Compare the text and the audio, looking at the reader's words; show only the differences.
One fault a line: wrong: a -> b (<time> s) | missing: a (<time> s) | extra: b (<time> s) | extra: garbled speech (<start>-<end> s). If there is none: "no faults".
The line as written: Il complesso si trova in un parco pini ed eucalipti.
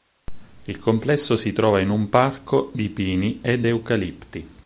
extra: di (2.7 s)